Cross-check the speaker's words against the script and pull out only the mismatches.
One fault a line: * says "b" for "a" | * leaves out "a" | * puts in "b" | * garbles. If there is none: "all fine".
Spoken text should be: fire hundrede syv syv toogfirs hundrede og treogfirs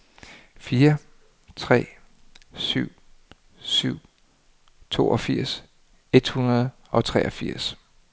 * says "tre" for "hundrede"
* puts in "et"